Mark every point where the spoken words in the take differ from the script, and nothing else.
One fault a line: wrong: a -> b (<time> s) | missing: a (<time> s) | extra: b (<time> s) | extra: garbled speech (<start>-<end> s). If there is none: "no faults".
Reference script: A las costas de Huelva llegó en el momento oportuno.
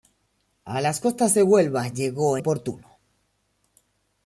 missing: en el momento (2.4 s)